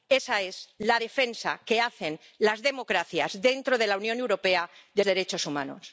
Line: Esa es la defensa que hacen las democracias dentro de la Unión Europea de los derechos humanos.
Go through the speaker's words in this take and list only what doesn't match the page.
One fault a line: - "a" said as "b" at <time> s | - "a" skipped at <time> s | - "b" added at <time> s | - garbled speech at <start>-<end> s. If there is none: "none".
- "los" skipped at 5.0 s